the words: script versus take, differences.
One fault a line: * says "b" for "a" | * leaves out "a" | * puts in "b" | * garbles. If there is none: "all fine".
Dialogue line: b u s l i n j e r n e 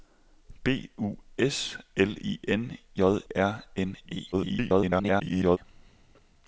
* leaves out "e"
* garbles